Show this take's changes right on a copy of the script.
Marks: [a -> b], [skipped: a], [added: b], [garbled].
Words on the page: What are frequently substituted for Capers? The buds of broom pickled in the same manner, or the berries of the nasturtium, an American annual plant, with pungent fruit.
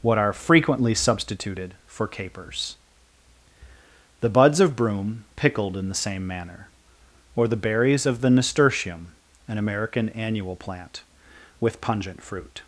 What are frequently substituted for Capers? The buds of broom pickled in the same manner, or the berries of the nasturtium, an American annual plant, with pungent fruit.